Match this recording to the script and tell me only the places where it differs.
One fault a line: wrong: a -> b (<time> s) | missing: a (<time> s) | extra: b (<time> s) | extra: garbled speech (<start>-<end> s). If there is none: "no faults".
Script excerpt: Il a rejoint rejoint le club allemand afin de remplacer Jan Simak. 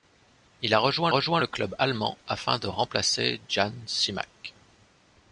no faults